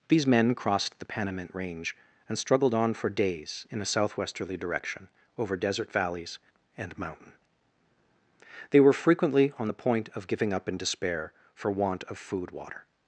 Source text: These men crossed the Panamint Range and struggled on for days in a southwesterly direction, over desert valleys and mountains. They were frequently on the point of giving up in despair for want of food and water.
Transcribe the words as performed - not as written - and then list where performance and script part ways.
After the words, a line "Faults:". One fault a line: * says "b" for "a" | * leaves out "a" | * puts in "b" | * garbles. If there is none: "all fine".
These men crossed the Panamint Range and struggled on for days in a southwesterly direction, over desert valleys and mountain. They were frequently on the point of giving up in despair for want of food water.
Faults:
* says "mountain" for "mountains"
* leaves out "and"